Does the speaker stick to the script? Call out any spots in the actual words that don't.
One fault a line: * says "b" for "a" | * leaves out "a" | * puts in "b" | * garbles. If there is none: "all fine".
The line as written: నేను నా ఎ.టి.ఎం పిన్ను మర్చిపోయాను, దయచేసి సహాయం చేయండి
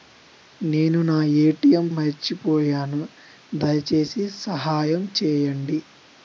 * leaves out "పిన్ను"